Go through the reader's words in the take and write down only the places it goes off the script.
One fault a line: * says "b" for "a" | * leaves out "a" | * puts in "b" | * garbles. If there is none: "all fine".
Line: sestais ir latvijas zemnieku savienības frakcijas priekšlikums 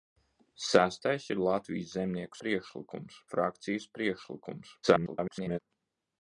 * says "priekšlikums" for "savienības"
* garbles